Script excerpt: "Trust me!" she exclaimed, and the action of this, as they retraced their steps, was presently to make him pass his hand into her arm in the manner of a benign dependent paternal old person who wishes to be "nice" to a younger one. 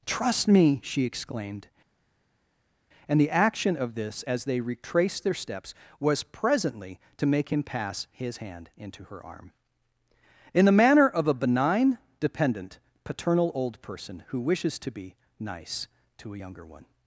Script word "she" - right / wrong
right